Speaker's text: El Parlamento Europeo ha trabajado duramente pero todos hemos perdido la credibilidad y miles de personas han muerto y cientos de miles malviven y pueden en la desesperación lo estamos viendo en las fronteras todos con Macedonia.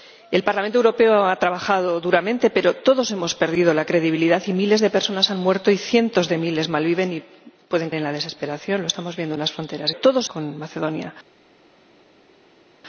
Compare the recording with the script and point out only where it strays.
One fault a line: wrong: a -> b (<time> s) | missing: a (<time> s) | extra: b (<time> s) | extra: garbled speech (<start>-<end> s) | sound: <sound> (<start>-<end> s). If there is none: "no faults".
no faults